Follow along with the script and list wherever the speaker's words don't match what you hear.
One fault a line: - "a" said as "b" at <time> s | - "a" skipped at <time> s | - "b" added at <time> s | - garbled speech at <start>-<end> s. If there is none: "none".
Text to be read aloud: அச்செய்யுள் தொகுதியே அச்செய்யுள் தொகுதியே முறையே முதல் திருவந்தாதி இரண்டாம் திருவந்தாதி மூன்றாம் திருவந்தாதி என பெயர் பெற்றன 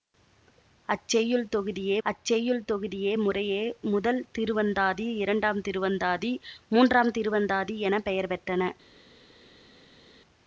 none